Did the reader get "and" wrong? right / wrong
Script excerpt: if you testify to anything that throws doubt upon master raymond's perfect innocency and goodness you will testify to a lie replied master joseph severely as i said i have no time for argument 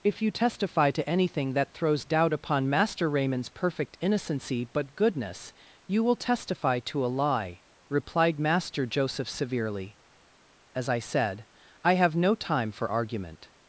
wrong